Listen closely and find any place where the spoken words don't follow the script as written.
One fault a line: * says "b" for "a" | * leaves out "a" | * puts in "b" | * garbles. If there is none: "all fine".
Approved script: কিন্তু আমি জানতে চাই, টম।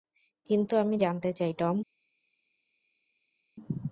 all fine